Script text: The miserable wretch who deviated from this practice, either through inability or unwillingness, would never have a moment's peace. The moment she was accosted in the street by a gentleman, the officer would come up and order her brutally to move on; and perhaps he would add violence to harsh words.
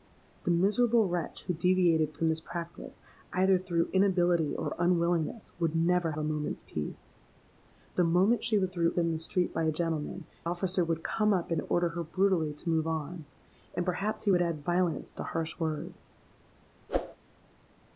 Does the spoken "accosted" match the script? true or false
false